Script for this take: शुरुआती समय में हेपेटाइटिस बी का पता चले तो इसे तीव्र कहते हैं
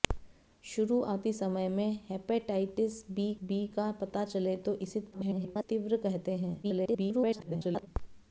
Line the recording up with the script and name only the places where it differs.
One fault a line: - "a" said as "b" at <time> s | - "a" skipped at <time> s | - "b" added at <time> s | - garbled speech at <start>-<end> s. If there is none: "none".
- "बी" added at 3.4 s
- garbled speech at 5.1-5.6 s
- garbled speech at 6.6-7.9 s